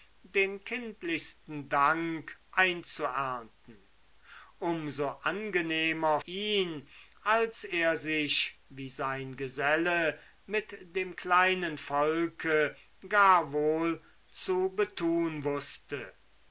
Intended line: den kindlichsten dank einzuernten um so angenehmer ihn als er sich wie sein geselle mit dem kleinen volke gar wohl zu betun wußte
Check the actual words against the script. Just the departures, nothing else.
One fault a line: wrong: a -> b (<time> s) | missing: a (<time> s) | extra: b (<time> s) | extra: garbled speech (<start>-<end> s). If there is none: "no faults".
no faults